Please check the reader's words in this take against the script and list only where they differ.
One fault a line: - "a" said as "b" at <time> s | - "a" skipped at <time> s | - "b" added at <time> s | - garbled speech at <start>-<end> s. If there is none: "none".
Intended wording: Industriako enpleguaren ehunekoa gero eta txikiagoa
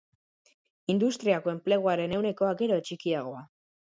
- "eta" skipped at 2.8 s